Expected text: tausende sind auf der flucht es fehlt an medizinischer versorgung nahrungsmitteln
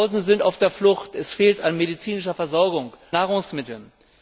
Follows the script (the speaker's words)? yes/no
yes